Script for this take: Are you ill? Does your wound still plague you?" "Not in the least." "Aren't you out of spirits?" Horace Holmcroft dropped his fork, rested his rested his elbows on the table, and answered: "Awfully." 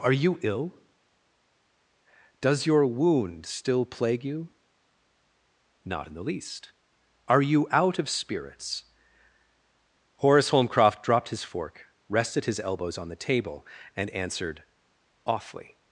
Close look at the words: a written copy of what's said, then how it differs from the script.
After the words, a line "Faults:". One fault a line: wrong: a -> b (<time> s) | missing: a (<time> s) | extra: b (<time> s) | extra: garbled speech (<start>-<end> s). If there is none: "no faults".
Are you ill? Does your wound still plague you?" "Not in the least." "Are you out of spirits?" Horace Holmcroft dropped his fork, rested his elbows on the table, and answered: "Awfully."
Faults:
wrong: Aren't -> Are (7.3 s)
missing: rested his (12.6 s)